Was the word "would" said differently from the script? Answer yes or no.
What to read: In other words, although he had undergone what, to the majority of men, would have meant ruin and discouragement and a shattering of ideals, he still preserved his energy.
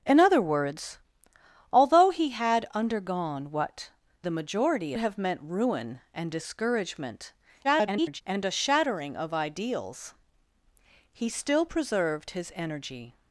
yes